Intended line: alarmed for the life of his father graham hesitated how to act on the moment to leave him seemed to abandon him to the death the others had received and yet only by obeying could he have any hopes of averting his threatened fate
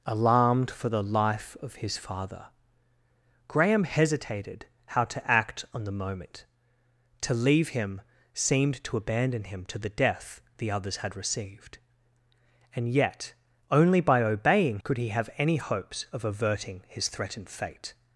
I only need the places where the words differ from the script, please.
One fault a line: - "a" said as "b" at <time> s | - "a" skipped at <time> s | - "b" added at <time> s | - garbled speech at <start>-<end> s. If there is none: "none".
none